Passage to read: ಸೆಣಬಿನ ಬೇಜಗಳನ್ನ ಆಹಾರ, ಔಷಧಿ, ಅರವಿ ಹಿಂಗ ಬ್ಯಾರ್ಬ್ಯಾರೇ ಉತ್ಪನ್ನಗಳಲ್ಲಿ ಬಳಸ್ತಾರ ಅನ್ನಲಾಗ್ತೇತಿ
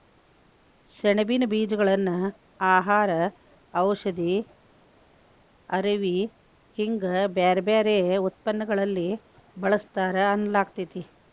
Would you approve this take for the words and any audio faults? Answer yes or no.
yes